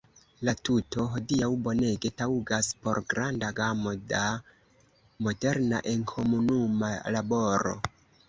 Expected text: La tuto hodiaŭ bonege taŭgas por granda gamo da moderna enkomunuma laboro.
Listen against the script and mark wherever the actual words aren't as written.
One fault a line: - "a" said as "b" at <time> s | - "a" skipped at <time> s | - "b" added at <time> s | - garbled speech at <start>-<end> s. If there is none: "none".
none